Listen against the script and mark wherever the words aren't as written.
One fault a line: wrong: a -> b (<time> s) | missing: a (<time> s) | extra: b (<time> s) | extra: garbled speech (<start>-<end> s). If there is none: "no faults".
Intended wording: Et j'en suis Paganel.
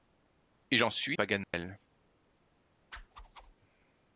no faults